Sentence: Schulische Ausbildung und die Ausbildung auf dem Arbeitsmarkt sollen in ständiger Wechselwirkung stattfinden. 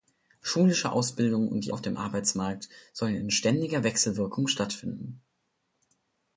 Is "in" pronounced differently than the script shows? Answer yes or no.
no